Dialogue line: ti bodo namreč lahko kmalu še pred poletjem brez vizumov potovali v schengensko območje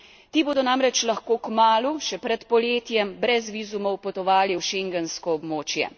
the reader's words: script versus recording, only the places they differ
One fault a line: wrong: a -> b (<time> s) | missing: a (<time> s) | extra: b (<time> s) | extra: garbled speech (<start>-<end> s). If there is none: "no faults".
no faults